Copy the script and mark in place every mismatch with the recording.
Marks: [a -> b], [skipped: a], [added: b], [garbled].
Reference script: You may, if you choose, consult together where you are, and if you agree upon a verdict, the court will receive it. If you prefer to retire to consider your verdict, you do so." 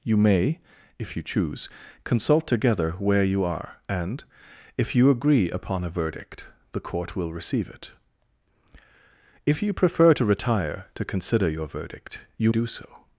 You may, if you choose, consult together where you are, and if you agree upon a verdict, the court will receive it. If you prefer to retire to consider your verdict, you do so."